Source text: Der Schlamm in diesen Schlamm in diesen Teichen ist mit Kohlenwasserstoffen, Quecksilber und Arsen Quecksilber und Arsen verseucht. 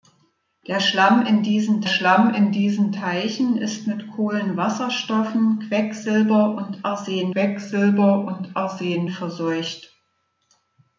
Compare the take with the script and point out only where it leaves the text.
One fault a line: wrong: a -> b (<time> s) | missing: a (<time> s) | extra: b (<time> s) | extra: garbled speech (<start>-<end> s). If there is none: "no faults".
no faults